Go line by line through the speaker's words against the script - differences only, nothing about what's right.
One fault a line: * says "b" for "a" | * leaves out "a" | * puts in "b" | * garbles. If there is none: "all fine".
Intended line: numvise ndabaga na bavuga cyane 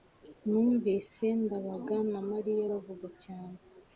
* puts in "mariya"